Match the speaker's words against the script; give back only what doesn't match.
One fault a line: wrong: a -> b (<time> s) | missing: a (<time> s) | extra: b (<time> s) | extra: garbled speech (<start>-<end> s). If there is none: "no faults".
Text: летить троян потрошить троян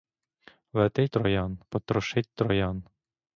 no faults